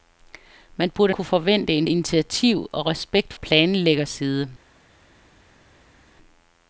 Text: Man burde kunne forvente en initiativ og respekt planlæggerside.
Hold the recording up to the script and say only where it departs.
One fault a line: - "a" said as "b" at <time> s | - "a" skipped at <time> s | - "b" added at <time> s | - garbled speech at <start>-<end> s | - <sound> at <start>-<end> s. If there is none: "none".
none